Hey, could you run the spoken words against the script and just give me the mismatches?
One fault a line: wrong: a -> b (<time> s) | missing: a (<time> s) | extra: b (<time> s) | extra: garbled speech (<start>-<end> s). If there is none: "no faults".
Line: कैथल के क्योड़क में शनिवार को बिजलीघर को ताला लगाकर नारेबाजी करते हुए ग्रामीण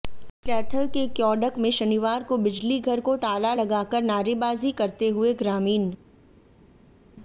no faults